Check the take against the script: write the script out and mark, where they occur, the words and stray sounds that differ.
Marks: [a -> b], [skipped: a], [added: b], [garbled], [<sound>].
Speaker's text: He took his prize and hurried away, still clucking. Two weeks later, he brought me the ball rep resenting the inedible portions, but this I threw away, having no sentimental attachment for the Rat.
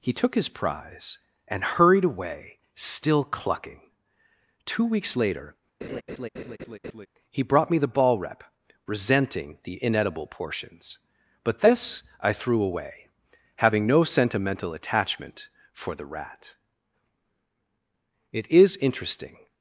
He took his prize and hurried away, still clucking. Two weeks later, [laugh] he brought me the ball rep resenting the inedible portions, but this I threw away, having no sentimental attachment for the Rat. [added: It is interesting]